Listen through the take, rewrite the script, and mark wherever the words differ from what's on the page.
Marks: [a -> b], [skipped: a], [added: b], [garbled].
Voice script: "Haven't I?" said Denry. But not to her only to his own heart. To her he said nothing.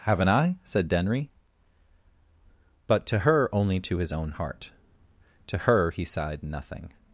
"Haven't I?" said Denry. But [skipped: not] to her only to his own heart. To her he [said -> sighed] nothing.